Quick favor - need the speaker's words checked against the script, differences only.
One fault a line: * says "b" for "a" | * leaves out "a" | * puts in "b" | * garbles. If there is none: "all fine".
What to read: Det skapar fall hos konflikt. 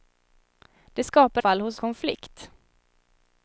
all fine